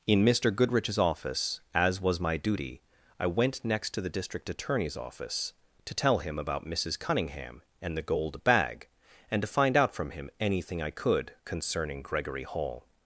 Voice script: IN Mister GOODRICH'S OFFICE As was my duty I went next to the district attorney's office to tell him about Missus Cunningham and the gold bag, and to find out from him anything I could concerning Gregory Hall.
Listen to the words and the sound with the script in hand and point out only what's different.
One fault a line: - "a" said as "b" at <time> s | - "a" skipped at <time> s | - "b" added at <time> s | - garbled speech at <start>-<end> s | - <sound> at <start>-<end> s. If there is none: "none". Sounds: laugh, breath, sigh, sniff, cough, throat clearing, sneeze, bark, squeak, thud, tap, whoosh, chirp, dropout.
none